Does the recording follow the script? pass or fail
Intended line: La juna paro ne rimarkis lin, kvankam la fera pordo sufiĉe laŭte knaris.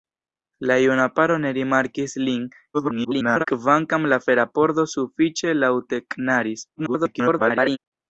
fail